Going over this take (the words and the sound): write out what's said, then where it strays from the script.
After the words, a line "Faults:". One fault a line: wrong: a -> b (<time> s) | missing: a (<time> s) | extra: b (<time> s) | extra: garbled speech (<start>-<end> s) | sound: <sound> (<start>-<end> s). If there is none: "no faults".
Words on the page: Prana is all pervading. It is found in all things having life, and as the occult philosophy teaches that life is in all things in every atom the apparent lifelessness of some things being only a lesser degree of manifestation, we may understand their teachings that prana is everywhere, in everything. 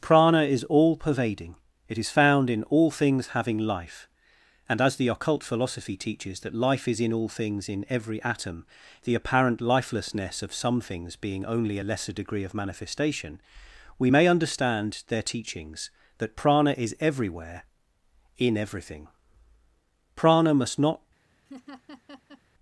Prana is all pervading. It is found in all things having life, and as the occult philosophy teaches that life is in all things in every atom the apparent lifelessness of some things being only a lesser degree of manifestation, we may understand their teachings that prana is everywhere, in everything. Prana must not
Faults:
extra: Prana must not (20.2 s)
sound: laugh (21.5-22.4 s)